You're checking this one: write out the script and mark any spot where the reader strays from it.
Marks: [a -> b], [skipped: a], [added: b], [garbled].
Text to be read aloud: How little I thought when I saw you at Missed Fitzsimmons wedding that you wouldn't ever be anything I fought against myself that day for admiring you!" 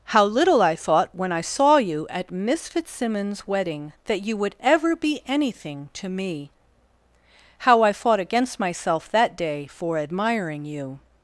How little I thought when I saw you at [Missed -> Miss] Fitzsimmons wedding that you [wouldn't -> would] ever be anything [added: to me How] I fought against myself that day for admiring you!"